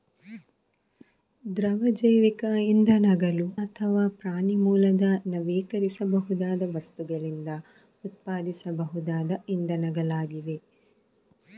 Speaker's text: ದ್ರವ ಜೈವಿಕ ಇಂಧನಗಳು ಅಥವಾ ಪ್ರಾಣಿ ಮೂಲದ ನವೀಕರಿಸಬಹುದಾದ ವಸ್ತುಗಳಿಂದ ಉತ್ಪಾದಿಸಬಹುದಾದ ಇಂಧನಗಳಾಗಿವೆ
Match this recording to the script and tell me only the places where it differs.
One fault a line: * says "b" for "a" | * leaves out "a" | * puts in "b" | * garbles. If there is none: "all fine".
all fine